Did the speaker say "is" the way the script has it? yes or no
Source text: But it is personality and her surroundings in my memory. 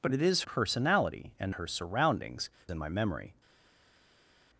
yes